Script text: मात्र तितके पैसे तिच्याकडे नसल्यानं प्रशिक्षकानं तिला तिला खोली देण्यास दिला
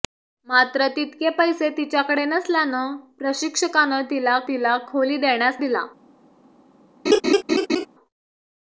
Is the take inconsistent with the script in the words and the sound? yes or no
yes